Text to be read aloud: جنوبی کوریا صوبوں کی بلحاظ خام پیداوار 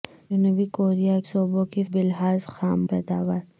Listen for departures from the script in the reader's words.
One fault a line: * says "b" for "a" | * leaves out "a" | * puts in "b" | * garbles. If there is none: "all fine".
all fine